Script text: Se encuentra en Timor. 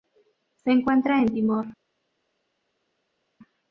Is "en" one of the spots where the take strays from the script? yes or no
no